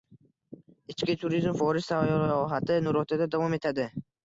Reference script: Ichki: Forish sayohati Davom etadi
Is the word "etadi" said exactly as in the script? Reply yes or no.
yes